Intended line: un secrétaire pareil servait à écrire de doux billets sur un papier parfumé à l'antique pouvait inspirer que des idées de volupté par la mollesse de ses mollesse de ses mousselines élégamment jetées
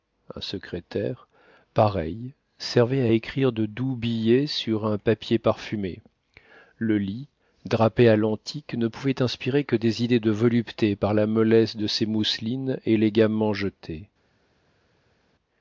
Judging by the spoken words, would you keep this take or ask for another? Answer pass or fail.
fail